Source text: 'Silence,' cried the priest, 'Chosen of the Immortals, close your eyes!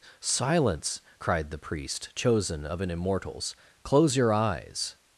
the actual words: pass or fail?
fail